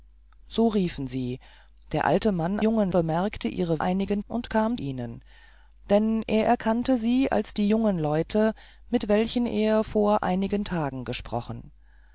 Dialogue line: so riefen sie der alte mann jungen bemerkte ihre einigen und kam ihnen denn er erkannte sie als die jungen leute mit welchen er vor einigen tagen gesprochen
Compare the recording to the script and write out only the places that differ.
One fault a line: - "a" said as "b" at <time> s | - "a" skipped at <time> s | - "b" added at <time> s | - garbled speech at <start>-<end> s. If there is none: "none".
none